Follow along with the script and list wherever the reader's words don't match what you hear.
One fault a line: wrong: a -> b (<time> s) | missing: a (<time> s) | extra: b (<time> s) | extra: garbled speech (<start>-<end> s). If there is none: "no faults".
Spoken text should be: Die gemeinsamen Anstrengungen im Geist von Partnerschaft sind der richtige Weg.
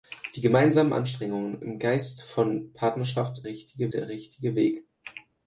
wrong: sind -> richtige (3.5 s)